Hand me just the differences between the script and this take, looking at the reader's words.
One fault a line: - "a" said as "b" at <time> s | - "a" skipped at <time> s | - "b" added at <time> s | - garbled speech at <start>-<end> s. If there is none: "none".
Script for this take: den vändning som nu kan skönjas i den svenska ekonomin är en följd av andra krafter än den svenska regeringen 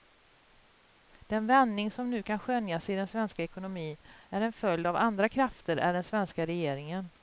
none